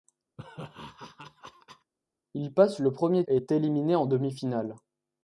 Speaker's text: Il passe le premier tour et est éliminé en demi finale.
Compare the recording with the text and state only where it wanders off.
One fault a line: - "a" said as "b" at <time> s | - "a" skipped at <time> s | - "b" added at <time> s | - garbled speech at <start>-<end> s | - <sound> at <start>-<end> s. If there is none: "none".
- laugh at 0.4-1.9 s
- "tour" skipped at 3.2 s